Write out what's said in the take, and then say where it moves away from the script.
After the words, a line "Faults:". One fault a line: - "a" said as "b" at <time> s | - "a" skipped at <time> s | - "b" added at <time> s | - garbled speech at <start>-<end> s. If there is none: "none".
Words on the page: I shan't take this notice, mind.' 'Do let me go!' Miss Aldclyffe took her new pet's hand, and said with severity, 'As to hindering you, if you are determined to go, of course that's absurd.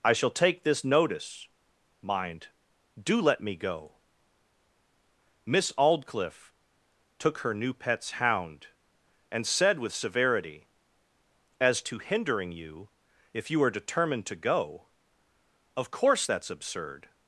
I shall take this notice, mind.' 'Do let me go!' Miss Aldclyffe took her new pet's hound, and said with severity, 'As to hindering you, if you are determined to go, of course that's absurd.
Faults:
- "shan't" said as "shall" at 0.1 s
- "hand" said as "hound" at 8.1 s